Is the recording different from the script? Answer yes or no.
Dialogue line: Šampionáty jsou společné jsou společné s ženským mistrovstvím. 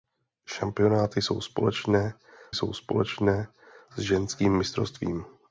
no